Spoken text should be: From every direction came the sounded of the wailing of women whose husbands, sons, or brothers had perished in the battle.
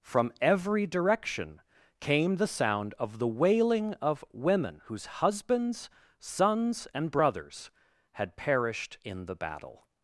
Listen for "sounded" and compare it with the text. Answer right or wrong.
wrong